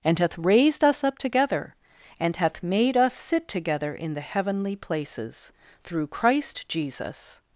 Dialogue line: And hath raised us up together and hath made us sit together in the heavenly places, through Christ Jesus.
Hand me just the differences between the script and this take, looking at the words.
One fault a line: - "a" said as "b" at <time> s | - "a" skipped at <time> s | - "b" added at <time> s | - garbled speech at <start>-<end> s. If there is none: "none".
none